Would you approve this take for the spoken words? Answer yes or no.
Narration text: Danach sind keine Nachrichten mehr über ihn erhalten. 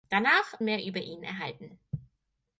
no